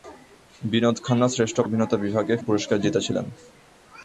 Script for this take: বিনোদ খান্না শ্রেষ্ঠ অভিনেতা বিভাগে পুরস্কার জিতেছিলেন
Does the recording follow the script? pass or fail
pass